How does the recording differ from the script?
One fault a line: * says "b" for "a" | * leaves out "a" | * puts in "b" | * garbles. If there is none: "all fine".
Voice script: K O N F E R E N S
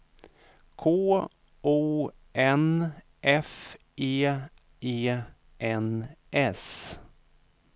* leaves out "R"